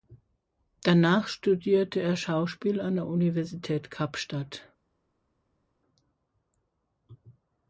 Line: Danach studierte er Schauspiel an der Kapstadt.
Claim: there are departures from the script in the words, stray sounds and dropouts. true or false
true